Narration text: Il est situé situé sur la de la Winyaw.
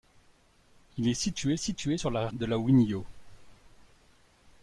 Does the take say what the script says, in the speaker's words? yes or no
yes